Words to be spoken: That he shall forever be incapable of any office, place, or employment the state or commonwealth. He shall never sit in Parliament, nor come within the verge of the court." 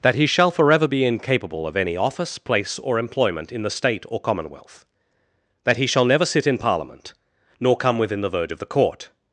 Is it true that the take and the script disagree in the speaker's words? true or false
true